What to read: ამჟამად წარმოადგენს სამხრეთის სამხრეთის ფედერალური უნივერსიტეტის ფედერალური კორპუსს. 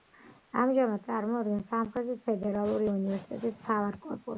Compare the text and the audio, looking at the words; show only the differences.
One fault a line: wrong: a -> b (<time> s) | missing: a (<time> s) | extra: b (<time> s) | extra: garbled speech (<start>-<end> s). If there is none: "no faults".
missing: სამხრეთის (2.2 s)
wrong: ფედერალური -> მთავარ (3.6 s)